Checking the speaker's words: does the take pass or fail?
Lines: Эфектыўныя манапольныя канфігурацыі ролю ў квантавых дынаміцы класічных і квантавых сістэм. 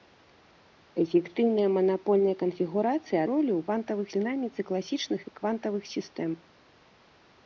pass